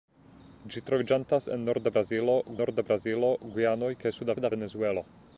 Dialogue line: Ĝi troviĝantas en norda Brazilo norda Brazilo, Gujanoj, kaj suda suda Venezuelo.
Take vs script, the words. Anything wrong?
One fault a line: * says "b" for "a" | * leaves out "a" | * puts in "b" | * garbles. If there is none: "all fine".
all fine